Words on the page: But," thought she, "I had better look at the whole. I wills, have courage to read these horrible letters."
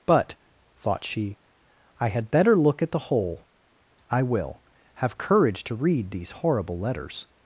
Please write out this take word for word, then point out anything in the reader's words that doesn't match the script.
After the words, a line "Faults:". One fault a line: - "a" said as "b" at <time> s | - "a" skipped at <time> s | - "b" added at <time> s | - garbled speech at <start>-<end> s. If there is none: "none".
But," thought she, "I had better look at the whole. I will, have courage to read these horrible letters."
Faults:
- "wills" said as "will" at 4.2 s